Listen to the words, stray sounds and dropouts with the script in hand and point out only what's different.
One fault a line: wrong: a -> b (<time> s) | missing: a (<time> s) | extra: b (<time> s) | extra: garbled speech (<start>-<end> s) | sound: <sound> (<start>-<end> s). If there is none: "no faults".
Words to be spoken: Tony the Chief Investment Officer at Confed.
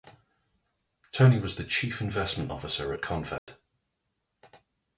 extra: was (1.4 s)
sound: dropout (3.4-3.5 s)